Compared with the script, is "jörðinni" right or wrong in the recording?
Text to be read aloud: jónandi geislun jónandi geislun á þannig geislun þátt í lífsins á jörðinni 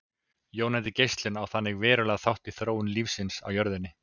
right